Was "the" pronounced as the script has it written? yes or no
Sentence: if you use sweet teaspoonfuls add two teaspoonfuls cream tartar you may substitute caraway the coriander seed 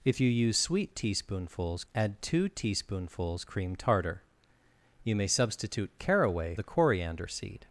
yes